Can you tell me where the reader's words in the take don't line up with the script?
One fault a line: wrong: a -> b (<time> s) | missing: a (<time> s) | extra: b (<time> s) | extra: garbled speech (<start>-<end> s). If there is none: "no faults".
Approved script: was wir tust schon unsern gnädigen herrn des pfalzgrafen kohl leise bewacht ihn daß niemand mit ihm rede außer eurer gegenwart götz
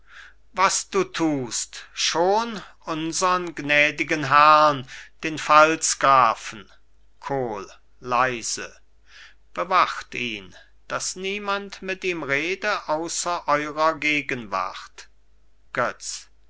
wrong: wir -> du (0.8 s)
wrong: des -> den (5.2 s)